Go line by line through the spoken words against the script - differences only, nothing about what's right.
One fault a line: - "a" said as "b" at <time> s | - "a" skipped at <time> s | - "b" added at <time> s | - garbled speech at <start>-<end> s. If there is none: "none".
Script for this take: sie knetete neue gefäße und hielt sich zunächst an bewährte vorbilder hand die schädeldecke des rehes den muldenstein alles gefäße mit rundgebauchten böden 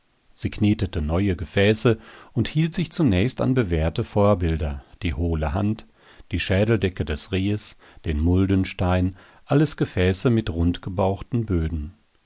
- "die hohle" added at 5.0 s